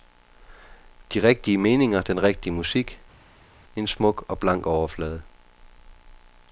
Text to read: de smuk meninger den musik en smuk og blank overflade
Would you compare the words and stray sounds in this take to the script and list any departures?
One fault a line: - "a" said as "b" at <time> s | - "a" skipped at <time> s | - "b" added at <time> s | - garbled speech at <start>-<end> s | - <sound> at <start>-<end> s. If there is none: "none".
- "smuk" said as "rigtige" at 1.2 s
- "rigtige" added at 2.2 s